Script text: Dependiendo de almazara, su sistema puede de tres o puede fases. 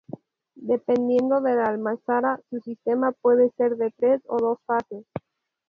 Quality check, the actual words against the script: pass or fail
fail